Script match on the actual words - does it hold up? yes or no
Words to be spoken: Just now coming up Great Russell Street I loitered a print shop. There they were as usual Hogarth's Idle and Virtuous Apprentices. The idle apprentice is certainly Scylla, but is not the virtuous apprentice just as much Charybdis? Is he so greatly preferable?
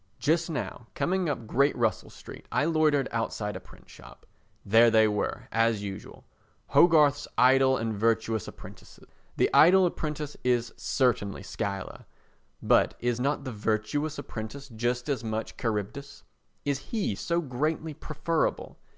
no